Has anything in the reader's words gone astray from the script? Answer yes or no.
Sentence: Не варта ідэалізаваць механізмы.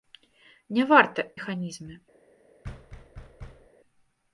yes